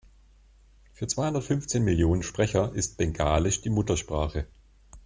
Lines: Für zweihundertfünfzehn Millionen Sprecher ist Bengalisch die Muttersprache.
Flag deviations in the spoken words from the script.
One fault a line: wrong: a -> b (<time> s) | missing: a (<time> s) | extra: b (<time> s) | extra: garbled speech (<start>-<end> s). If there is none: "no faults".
no faults